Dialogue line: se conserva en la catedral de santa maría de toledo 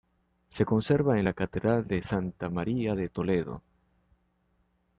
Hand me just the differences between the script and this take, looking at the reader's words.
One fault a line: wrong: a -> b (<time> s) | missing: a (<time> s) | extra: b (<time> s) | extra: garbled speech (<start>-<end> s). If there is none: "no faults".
no faults